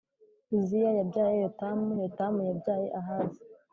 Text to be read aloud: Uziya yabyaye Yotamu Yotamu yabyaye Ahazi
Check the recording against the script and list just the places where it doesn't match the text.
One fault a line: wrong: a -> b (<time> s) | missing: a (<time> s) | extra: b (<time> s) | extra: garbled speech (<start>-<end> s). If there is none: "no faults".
no faults